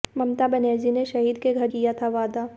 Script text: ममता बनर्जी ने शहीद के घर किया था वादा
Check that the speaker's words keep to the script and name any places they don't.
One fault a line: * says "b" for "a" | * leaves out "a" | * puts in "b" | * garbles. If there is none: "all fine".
all fine